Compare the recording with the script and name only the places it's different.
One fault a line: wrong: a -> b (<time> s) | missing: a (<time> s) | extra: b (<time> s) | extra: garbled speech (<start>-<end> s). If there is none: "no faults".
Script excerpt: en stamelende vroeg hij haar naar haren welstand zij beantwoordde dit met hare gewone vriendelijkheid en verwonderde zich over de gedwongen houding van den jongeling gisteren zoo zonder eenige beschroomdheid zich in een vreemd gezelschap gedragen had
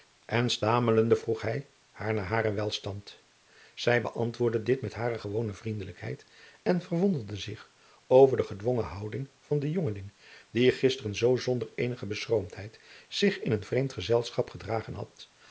extra: die (10.5 s)